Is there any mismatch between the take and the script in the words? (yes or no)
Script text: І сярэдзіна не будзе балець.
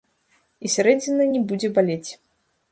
no